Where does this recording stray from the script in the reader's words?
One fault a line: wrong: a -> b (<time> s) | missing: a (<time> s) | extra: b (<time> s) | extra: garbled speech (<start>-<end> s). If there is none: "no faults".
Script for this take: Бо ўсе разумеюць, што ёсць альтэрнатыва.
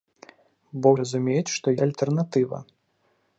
missing: ўсе (0.9 s)
missing: ёсць (1.7 s)